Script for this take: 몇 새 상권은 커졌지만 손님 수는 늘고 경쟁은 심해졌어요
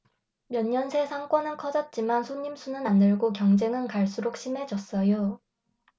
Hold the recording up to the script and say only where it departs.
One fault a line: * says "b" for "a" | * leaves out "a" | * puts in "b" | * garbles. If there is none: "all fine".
* puts in "년"
* puts in "안"
* puts in "갈수록"